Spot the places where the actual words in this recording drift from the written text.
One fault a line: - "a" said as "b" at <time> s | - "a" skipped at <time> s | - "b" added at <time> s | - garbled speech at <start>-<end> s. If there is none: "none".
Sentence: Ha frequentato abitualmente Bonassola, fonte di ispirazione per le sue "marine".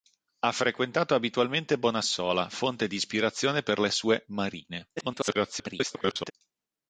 - garbled speech at 5.0-6.3 s